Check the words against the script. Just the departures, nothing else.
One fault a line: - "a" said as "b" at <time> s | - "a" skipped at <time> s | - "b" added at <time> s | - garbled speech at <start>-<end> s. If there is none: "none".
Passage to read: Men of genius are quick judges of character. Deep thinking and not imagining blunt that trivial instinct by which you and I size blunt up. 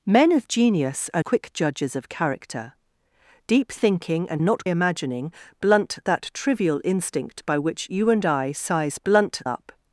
none